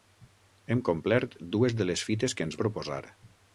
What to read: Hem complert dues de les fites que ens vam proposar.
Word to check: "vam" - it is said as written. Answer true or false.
false